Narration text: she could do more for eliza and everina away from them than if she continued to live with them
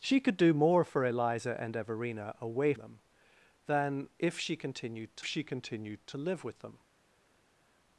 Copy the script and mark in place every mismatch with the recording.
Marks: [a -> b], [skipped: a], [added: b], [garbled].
she could do more for eliza and everina away [skipped: from] them than if she continued to [added: she continued to] live with them